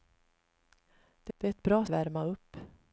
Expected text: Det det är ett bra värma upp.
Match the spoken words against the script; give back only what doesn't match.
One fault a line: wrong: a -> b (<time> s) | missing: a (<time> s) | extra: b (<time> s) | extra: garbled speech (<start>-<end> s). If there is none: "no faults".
no faults